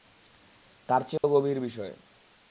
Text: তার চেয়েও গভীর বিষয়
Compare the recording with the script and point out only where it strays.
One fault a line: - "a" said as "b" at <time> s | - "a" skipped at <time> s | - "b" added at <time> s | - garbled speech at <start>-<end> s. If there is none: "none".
none